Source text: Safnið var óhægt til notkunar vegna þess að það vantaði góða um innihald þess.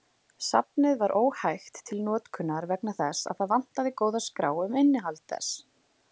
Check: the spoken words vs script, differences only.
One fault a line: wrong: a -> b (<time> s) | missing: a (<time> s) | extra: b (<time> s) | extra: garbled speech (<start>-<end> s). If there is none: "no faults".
extra: skrá (4.3 s)